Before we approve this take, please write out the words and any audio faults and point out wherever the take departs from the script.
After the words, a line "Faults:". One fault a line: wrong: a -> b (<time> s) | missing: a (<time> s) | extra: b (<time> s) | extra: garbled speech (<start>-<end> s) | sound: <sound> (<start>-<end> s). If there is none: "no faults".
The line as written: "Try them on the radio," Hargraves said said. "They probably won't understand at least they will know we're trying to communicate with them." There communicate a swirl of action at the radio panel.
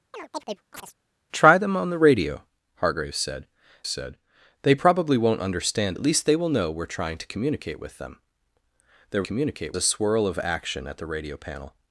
"Try them on the radio," Hargraves said said. "They probably won't understand at least they will know we're trying to communicate with them." There communicate a swirl of action at the radio panel.
Faults:
sound: chirp (0.1-0.9 s)